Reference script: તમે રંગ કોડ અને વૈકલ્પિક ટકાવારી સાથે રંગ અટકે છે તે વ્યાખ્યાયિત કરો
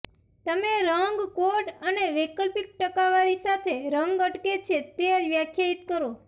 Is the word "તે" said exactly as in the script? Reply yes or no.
yes